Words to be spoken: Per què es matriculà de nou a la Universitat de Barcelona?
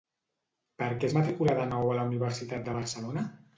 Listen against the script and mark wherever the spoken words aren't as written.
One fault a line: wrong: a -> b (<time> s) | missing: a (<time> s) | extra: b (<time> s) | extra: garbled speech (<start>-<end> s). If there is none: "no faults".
no faults